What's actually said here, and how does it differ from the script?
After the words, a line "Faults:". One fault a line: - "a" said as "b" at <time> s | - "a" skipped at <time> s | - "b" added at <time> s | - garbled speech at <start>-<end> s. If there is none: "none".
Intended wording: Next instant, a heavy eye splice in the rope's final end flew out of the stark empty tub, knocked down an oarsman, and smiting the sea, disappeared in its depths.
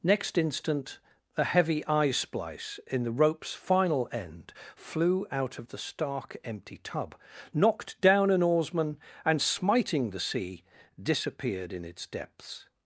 Next instant, a heavy eye splice in the rope's final end flew out of the stark empty tub, knocked down an oarsman, and smiting the sea, disappeared in its depths.
Faults:
none